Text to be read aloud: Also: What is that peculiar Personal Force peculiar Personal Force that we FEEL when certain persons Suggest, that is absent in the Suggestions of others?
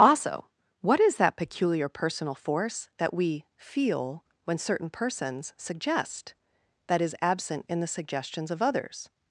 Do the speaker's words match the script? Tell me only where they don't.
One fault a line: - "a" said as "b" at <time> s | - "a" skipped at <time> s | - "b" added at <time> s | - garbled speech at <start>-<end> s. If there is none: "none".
- "peculiar Personal Force" skipped at 2.9 s